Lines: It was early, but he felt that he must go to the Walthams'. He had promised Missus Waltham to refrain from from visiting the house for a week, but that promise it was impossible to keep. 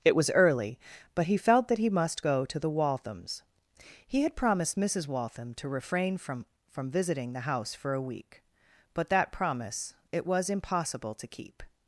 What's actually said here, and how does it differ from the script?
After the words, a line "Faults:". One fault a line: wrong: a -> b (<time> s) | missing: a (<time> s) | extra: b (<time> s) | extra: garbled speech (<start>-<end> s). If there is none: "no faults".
It was early, but he felt that he must go to the Walthams'. He had promised Missus Waltham to refrain from from visiting the house for a week, but that promise it was impossible to keep.
Faults:
no faults